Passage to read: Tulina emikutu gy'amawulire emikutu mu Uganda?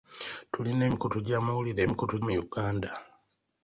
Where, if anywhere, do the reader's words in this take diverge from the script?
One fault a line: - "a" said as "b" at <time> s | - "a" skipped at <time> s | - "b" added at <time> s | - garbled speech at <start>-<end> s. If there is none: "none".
none